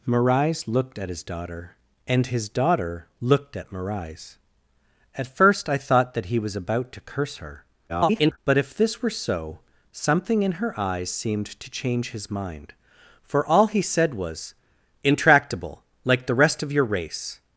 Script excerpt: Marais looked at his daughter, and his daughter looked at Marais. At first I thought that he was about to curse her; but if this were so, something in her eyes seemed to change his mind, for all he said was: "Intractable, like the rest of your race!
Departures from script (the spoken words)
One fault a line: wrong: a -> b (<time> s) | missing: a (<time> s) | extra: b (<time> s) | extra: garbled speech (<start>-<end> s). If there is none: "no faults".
extra: garbled speech (7.9-8.4 s)